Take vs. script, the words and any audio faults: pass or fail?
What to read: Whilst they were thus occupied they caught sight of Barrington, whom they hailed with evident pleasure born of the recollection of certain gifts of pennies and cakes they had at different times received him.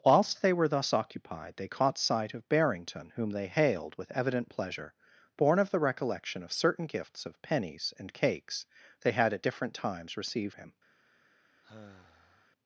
fail